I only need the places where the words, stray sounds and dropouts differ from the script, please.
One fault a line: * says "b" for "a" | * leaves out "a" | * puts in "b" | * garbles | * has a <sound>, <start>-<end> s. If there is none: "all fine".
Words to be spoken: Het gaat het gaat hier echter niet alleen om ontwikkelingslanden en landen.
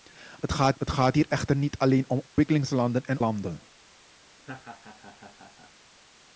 * has a dropout, 2.3-2.4 s
* has a laugh, 4.4-5.7 s